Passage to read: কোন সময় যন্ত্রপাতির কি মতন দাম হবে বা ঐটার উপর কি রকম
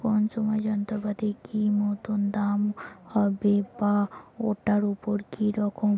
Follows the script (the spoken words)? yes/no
yes